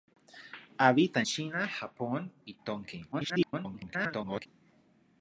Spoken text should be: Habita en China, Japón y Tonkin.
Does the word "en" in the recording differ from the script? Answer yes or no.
yes